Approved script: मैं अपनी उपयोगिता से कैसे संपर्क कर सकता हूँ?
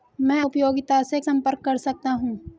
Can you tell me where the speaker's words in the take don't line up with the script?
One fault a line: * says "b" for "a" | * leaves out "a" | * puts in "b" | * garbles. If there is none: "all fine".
* leaves out "अपनी"
* leaves out "कैसे"